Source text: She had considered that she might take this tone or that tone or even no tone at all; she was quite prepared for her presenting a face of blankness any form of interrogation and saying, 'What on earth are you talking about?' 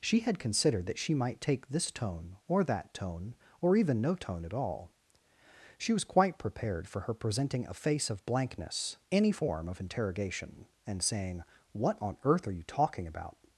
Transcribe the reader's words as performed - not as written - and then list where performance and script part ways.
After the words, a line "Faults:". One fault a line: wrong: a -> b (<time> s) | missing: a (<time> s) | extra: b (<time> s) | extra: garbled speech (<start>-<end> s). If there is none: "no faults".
She had considered that she might take this tone or that tone or even no tone at all; she was quite prepared for her presenting a face of blankness any form of interrogation and saying, 'What on earth are you talking about?'
Faults:
no faults